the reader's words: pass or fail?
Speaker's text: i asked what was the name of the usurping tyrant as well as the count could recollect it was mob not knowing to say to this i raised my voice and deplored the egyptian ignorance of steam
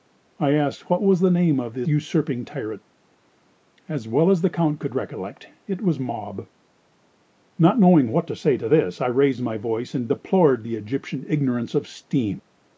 fail